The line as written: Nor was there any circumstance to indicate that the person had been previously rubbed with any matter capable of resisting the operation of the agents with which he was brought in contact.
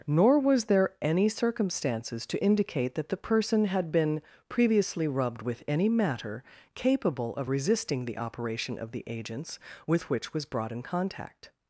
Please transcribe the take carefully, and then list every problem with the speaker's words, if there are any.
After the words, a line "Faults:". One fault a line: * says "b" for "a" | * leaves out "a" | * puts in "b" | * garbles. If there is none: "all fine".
Nor was there any circumstances to indicate that the person had been previously rubbed with any matter capable of resisting the operation of the agents with which was brought in contact.
Faults:
* says "circumstances" for "circumstance"
* leaves out "he"